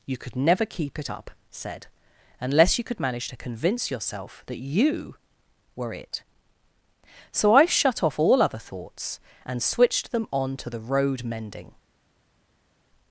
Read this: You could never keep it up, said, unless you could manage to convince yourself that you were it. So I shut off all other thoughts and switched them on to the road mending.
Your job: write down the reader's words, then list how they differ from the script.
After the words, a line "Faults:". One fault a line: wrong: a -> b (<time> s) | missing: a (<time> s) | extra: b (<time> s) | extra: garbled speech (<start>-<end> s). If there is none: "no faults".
You could never keep it up, said, unless you could manage to convince yourself that you were it. So I shut off all other thoughts and switched them on to the road mending.
Faults:
no faults